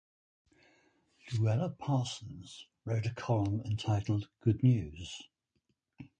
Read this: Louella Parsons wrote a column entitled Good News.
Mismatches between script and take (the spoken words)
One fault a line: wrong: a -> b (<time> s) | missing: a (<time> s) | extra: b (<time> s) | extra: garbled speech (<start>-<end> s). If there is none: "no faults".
no faults